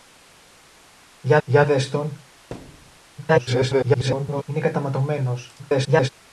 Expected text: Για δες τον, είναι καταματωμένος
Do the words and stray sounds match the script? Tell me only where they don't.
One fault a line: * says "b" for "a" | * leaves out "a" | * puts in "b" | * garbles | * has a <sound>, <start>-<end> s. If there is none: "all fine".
* puts in "για"
* has a thud, 2.5-3.0 s
* garbles
* garbles